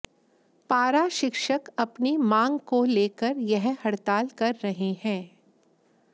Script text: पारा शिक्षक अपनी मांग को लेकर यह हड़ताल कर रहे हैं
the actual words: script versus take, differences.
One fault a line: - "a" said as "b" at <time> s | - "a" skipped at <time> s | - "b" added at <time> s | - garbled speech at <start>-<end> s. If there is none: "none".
none